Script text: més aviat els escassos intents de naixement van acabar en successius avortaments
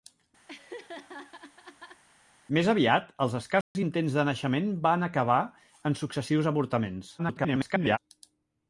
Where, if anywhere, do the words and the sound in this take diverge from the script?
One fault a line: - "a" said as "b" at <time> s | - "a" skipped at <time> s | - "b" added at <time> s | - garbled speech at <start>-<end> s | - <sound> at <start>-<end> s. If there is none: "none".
- laugh at 0.5-2.0 s
- dropout at 3.6-3.8 s
- garbled speech at 7.2-8.0 s